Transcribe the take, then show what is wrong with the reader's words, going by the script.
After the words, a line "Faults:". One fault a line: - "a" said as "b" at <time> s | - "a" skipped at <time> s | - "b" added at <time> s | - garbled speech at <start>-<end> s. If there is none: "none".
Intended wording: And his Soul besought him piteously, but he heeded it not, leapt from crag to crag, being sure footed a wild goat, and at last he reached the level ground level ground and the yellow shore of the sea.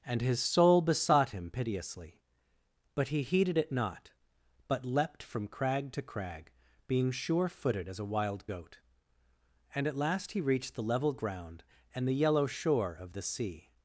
And his Soul besought him piteously, but he heeded it not, but leapt from crag to crag, being sure footed as a wild goat, and at last he reached the level ground and the yellow shore of the sea.
Faults:
- "but" added at 4.7 s
- "as" added at 7.9 s
- "level ground" skipped at 11.6 s